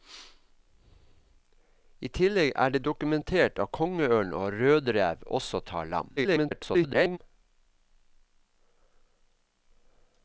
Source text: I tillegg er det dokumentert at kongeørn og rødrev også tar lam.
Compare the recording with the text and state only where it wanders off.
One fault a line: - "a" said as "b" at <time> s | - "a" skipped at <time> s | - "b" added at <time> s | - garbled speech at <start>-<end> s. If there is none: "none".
- garbled speech at 6.2-7.2 s